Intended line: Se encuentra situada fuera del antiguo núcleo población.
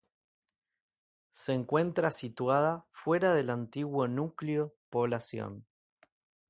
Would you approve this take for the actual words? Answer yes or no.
yes